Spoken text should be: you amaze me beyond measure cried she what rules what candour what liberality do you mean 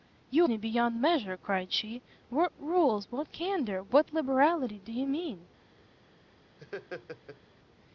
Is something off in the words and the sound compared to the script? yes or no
yes